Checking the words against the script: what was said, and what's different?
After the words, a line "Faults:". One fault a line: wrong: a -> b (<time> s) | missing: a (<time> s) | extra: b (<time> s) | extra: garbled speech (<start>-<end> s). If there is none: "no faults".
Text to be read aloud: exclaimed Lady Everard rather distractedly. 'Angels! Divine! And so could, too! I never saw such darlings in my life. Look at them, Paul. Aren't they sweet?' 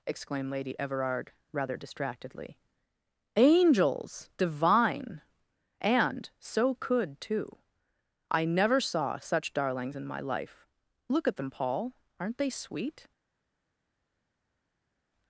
exclaimed Lady Everard rather distractedly. 'Angels! Divine! And so could, too! I never saw such darlings in my life. Look at them, Paul. Aren't they sweet?'
Faults:
no faults